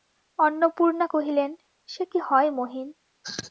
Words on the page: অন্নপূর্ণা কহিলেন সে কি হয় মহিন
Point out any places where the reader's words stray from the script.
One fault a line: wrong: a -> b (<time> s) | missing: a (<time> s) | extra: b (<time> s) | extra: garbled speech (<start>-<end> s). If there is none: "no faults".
no faults